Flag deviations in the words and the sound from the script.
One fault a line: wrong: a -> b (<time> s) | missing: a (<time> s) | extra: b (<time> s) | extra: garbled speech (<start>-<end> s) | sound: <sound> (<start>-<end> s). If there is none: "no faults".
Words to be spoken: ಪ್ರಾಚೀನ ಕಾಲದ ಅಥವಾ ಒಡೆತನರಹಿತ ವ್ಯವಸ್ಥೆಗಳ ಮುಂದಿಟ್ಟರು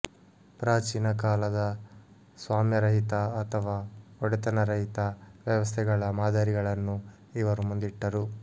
extra: ಸ್ವಾಮ್ಯರಹಿತ (2.4 s)
extra: ಮಾದರಿಗಳನ್ನು ಇವರು (6.2 s)